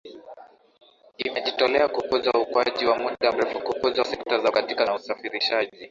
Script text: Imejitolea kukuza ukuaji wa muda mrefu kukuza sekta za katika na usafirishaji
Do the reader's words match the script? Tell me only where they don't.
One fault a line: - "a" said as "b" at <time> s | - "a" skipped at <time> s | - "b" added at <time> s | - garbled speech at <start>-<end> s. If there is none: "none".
none